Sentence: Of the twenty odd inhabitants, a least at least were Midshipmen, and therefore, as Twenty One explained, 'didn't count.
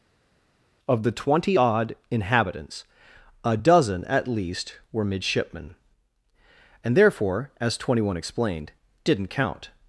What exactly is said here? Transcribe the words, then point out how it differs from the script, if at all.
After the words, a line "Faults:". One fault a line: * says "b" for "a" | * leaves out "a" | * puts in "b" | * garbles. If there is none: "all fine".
Of the twenty odd inhabitants, a dozen at least were Midshipmen, and therefore, as Twenty One explained, 'didn't count.
Faults:
* says "dozen" for "least"